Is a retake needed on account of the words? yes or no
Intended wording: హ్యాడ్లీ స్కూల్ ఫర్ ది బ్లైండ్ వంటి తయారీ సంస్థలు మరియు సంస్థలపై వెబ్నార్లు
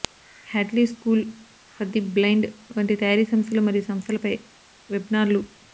no